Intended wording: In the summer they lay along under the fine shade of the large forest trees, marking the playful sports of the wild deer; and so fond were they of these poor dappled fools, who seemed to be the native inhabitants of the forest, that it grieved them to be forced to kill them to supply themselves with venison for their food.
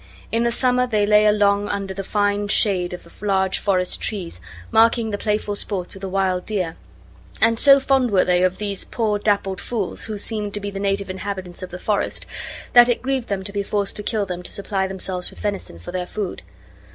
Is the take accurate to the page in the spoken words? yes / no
yes